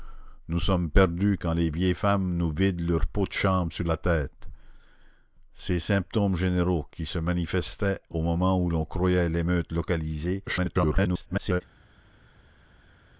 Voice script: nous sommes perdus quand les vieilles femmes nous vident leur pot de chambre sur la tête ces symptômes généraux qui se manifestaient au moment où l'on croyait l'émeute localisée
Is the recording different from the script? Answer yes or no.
yes